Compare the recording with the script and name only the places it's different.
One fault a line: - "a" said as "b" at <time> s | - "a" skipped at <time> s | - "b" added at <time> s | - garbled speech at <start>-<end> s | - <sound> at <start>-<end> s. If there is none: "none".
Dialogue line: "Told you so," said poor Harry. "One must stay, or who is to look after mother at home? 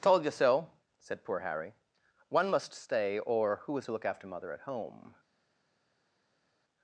none